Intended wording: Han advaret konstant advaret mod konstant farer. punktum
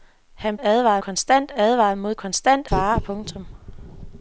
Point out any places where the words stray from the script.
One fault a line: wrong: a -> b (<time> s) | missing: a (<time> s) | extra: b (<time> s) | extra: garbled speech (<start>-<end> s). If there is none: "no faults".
no faults